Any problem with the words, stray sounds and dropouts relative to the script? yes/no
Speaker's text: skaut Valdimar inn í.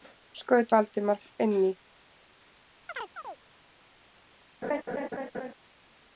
yes